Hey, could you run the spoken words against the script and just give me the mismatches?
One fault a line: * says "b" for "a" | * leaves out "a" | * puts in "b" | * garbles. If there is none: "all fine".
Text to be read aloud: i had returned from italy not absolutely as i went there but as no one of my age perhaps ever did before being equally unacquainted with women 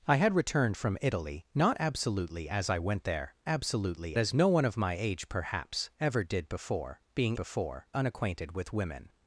* says "absolutely" for "but"
* says "before" for "equally"